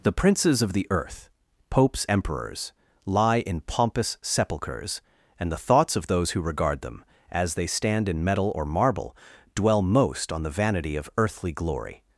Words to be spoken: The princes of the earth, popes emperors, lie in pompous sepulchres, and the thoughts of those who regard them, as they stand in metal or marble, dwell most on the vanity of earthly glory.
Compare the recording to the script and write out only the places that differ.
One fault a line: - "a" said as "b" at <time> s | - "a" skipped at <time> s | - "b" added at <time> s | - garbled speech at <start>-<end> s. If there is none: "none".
none